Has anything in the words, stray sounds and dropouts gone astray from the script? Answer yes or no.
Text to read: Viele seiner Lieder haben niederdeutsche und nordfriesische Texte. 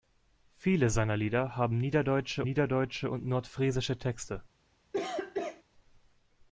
yes